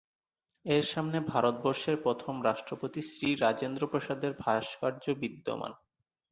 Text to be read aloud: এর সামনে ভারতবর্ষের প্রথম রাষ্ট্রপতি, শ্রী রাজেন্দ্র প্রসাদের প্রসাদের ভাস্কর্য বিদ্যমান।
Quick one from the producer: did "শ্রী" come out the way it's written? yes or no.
yes